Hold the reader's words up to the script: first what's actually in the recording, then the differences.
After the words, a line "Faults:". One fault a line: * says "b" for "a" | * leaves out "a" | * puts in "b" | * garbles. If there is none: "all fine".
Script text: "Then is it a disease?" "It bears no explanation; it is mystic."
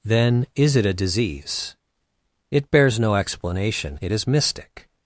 "Then is it a disease?" "It bears no explanation; it is mystic."
Faults:
all fine